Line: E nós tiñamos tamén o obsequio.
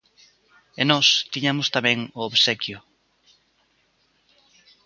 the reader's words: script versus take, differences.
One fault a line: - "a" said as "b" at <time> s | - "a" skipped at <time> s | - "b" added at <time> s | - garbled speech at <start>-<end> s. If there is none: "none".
none